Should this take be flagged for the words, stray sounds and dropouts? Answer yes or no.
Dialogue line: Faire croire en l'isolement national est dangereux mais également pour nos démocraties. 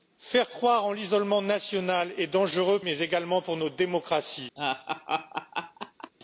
yes